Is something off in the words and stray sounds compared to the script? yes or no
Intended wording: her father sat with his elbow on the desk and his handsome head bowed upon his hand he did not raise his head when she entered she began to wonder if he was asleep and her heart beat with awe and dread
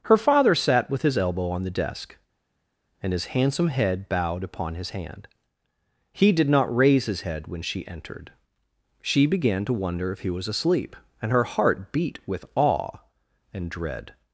no